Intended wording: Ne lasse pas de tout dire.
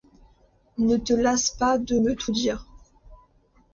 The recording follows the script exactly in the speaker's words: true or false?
false